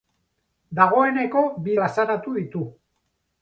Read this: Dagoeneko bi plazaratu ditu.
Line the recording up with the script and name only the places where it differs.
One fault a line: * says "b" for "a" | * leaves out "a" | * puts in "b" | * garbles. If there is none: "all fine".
all fine